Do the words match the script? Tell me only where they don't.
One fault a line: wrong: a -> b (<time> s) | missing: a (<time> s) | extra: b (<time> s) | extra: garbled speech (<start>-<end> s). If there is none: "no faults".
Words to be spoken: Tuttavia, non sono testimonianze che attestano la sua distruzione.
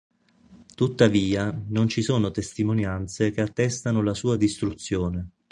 extra: ci (1.9 s)